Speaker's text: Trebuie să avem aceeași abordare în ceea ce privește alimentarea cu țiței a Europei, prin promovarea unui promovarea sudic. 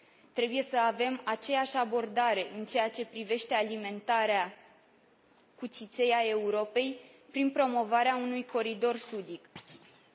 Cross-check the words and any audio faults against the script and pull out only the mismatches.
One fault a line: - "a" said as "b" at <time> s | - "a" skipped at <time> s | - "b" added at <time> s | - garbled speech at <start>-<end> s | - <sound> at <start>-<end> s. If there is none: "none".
- "promovarea" said as "coridor" at 8.4 s
- thud at 9.6-10.1 s